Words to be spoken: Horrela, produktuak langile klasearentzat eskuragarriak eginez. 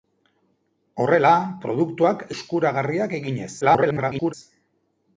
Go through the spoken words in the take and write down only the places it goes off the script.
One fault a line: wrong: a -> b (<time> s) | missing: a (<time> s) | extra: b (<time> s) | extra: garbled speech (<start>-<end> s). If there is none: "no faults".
missing: langile klasearentzat (2.2 s)
extra: garbled speech (3.6-4.3 s)